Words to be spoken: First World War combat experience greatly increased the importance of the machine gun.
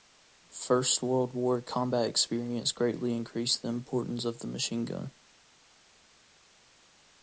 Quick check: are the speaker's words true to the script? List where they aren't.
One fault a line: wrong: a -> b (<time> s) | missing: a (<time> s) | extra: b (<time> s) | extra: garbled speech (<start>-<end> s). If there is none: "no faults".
no faults